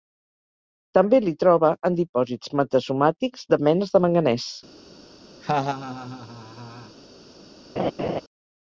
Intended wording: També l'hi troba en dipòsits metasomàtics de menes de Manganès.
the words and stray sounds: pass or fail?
fail